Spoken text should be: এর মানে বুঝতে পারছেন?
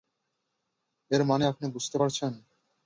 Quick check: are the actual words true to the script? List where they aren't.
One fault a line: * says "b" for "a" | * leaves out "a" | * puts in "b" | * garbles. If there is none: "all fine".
* puts in "আপনি"